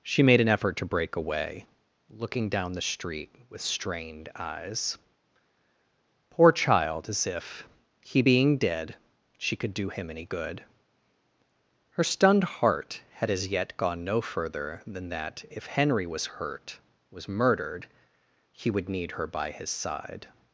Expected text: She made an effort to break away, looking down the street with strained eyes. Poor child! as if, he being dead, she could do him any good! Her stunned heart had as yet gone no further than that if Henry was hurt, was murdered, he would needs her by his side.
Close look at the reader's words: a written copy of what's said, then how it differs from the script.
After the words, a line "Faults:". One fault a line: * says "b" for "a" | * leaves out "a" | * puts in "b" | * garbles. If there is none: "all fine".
She made an effort to break away, looking down the street with strained eyes. Poor child! as if, he being dead, she could do him any good! Her stunned heart had as yet gone no further than that if Henry was hurt, was murdered, he would need her by his side.
Faults:
* says "need" for "needs"